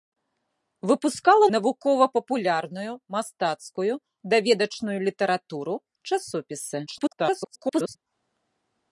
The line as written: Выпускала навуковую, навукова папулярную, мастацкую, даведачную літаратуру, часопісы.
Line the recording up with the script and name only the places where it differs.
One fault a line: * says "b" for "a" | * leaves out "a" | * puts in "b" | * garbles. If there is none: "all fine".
* leaves out "навуковую"
* garbles